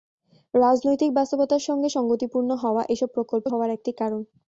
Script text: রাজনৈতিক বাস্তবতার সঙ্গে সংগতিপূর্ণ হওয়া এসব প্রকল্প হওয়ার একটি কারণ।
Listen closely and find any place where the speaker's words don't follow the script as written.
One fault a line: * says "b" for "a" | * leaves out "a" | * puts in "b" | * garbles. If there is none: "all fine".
all fine